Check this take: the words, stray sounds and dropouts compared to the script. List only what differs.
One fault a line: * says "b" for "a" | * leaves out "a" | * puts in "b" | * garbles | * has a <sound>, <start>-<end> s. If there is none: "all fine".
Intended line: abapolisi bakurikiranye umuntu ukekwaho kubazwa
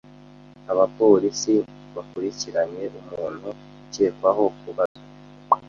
* has a dropout, 4.9-5.0 s